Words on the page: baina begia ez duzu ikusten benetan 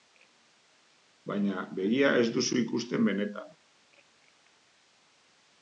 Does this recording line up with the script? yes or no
yes